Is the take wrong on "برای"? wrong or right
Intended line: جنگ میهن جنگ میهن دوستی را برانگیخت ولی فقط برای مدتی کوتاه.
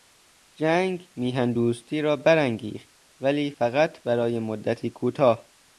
right